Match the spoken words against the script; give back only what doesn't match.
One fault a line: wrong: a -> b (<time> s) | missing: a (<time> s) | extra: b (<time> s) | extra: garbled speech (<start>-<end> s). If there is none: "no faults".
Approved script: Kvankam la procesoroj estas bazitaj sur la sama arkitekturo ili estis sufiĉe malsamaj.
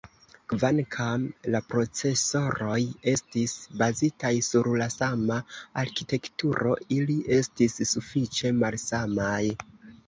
wrong: estas -> estis (3.1 s)